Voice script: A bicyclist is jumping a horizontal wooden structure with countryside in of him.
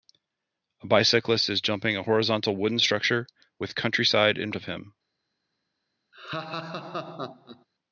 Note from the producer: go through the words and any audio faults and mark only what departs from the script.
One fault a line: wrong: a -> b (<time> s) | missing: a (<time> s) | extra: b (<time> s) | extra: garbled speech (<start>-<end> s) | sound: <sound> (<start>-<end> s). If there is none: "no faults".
sound: laugh (6.1-7.7 s)